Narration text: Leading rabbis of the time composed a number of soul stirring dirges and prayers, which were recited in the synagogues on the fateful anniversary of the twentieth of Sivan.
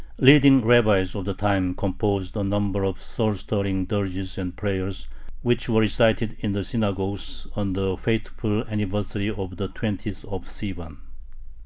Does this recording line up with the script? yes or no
yes